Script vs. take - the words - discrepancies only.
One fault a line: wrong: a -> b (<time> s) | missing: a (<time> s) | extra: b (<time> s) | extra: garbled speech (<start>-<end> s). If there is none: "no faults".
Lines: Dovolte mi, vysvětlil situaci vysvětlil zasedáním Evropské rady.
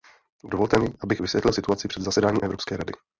extra: abych (1.0 s)
wrong: vysvětlil -> před (1.9 s)